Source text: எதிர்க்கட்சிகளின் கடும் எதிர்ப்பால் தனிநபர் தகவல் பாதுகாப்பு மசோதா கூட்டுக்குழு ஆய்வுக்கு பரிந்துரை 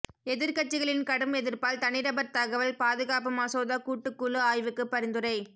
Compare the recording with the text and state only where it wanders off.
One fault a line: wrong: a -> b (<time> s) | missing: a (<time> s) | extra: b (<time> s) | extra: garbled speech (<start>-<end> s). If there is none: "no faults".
no faults